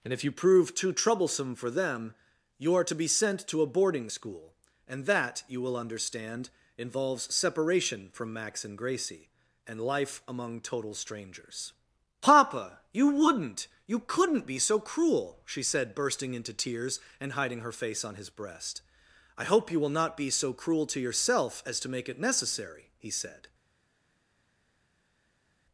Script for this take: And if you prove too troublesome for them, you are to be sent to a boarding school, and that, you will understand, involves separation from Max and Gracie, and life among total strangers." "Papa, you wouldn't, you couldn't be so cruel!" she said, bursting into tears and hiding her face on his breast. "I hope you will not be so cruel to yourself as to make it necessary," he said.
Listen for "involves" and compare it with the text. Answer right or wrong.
right